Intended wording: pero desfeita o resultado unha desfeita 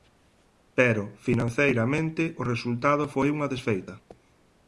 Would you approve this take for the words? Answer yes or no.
no